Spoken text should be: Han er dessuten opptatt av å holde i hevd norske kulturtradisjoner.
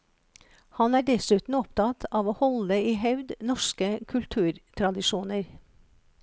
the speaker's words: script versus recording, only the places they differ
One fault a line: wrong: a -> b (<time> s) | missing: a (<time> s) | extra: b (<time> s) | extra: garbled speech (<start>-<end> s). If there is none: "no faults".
no faults